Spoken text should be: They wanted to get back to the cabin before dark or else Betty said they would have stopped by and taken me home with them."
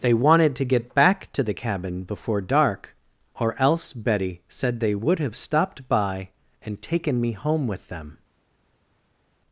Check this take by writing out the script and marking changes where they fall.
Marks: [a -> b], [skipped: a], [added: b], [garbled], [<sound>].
They wanted to get back to the cabin before dark or else Betty said they would have stopped by and taken me home with them."